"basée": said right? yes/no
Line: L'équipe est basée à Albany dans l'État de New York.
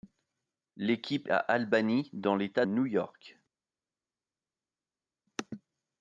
no